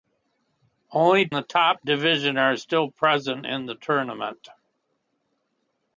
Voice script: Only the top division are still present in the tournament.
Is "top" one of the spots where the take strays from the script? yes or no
no